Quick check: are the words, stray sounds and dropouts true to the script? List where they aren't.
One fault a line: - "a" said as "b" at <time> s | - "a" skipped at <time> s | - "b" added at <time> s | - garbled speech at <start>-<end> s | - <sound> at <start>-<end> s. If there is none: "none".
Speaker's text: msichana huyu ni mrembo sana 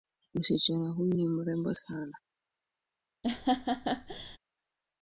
- laugh at 3.2-4.4 s